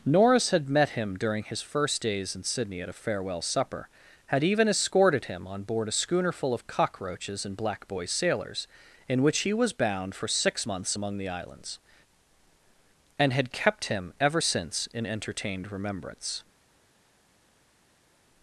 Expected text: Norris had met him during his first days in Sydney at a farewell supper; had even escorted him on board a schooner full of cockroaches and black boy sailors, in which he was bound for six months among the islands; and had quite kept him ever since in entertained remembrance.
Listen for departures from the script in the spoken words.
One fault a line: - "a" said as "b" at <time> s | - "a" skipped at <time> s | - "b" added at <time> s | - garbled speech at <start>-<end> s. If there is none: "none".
- "quite" skipped at 13.5 s